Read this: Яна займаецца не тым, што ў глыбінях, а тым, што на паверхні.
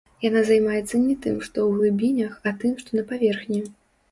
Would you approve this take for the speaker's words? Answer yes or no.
yes